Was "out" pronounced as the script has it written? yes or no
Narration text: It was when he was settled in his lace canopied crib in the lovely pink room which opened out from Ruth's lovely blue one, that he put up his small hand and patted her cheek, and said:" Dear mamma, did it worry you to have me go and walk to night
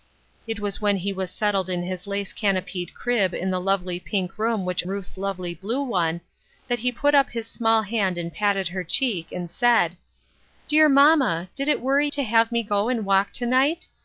no